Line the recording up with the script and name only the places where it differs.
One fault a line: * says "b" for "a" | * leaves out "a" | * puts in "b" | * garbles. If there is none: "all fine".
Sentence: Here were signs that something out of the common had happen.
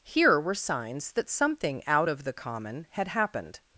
* says "happened" for "happen"